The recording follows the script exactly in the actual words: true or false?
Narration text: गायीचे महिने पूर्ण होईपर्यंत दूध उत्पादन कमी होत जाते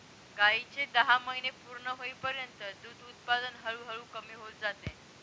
false